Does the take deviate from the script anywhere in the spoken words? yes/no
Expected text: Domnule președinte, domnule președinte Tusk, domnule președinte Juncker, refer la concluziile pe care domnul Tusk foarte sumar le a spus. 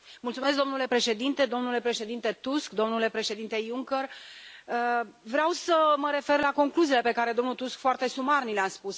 yes